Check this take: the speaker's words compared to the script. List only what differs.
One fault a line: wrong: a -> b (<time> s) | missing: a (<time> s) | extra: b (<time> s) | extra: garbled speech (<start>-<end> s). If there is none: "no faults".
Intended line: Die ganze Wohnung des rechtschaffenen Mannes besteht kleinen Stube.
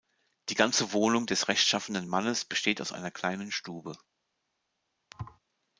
extra: aus einer (2.8 s)